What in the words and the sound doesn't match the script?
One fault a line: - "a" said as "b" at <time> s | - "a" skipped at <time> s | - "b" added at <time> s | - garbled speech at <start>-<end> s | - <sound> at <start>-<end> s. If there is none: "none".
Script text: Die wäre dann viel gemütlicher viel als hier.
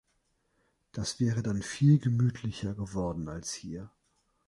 - "Die" said as "Das" at 0.9 s
- "viel" said as "geworden" at 2.7 s